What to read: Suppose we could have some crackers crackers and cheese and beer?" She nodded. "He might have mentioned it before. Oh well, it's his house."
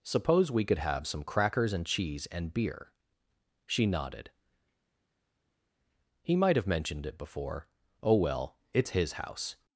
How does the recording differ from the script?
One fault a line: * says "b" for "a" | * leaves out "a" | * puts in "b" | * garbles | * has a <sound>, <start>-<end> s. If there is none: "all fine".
* leaves out "crackers"